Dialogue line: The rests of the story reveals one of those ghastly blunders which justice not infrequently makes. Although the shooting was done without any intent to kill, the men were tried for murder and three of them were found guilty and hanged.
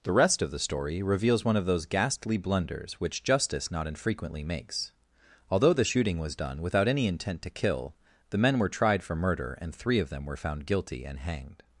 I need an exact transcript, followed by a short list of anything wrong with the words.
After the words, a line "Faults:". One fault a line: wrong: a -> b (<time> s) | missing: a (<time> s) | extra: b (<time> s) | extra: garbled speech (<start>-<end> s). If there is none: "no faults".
The rest of the story reveals one of those ghastly blunders which justice not infrequently makes. Although the shooting was done without any intent to kill, the men were tried for murder and three of them were found guilty and hanged.
Faults:
wrong: rests -> rest (0.1 s)